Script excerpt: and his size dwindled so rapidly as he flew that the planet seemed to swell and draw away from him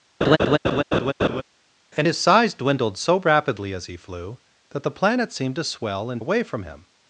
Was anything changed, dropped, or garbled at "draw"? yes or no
yes